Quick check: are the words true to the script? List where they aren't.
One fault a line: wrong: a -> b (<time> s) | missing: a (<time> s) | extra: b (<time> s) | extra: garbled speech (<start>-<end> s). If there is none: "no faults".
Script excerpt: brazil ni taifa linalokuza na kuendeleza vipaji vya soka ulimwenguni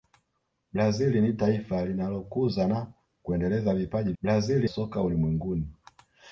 wrong: vya -> brazil (4.2 s)